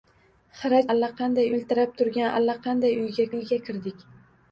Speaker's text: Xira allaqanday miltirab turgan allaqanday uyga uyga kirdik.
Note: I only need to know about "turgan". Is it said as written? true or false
true